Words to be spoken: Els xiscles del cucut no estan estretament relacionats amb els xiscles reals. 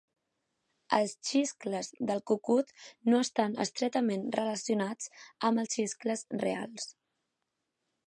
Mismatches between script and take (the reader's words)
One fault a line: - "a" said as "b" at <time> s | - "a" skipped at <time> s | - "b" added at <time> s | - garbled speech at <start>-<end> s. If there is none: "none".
none